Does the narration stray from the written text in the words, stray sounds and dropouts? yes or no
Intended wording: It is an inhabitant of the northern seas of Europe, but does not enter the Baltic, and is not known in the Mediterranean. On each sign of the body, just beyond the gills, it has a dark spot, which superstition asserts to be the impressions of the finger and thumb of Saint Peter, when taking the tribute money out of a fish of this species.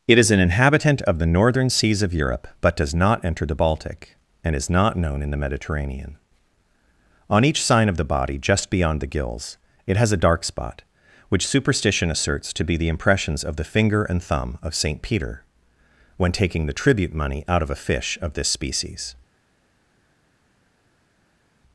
no